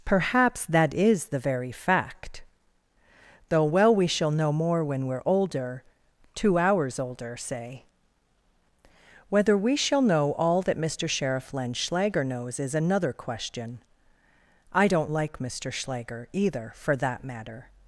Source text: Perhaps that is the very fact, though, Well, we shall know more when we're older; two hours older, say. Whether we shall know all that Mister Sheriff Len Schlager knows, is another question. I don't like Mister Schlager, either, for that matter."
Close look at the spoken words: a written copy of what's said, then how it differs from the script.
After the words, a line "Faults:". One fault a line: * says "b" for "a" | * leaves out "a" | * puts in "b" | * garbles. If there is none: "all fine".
Perhaps that is the very fact, though, Well, we shall know more when we're older; two hours older, say. Whether we shall know all that Mister Sheriff Len Schlager knows, is another question. I don't like Mister Schlager, either, for that matter."
Faults:
all fine